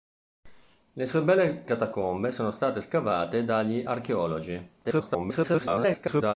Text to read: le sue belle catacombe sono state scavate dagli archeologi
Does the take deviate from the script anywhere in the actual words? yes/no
yes